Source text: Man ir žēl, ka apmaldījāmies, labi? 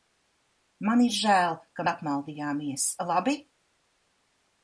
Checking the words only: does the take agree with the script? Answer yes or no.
yes